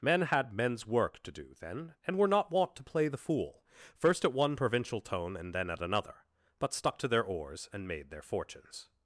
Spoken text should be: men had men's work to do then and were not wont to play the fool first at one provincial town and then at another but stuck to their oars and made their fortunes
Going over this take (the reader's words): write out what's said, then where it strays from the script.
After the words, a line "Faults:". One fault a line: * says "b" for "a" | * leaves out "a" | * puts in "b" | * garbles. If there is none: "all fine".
men had men's work to do then and were not wont to play the fool first at one provincial tone and then at another but stuck to their oars and made their fortunes
Faults:
* says "tone" for "town"